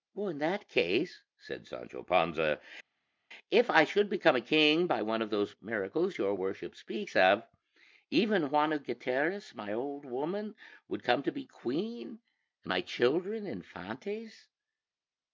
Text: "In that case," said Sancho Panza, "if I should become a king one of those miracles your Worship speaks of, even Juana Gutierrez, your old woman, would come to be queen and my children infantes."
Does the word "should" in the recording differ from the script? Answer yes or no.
no